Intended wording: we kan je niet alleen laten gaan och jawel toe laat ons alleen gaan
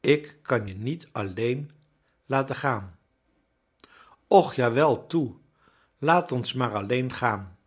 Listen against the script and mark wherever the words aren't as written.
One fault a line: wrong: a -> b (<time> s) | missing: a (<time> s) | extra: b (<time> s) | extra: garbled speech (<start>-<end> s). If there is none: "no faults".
wrong: we -> ik (0.0 s)
extra: maar (6.5 s)